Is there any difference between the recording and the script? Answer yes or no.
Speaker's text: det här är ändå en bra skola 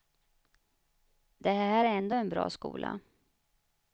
no